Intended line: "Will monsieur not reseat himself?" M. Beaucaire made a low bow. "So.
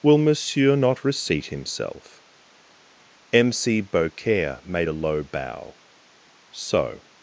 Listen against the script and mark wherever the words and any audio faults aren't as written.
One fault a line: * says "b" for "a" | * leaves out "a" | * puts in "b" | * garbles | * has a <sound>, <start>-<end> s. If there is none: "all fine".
* puts in "c"